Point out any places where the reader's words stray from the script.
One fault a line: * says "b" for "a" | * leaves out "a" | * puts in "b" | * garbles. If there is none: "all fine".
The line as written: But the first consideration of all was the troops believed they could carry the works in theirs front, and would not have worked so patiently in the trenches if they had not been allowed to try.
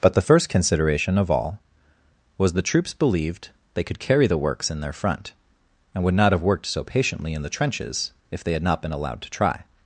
* says "their" for "theirs"